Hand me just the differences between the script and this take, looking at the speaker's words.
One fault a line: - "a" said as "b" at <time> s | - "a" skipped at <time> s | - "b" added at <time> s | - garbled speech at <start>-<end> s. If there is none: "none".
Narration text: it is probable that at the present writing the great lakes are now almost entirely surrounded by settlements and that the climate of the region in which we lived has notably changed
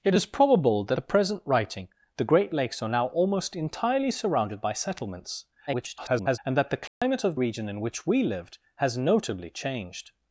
- "at" skipped at 1.0 s
- garbled speech at 5.7-6.4 s
- "the" skipped at 7.4 s